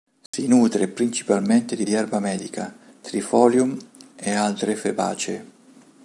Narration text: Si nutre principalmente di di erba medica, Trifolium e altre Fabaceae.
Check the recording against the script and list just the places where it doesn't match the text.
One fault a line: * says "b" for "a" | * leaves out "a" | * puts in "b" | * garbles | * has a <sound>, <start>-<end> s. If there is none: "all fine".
* has a dropout, 0.3-0.3 s